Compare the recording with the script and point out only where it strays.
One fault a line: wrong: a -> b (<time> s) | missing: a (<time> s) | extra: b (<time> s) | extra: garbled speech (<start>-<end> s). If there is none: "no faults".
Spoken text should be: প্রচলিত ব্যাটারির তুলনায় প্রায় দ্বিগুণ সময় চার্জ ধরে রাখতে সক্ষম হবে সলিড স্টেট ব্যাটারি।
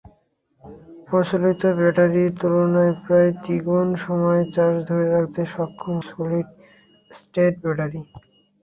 missing: হবে (6.0 s)